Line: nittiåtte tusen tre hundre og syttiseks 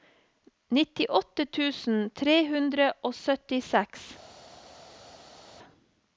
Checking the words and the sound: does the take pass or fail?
pass